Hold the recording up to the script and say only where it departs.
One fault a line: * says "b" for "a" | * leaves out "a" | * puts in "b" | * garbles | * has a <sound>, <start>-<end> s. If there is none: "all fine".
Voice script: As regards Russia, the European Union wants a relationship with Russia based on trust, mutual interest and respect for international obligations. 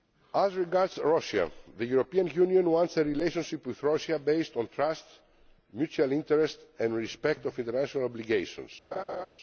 * has a laugh, 8.9-9.3 s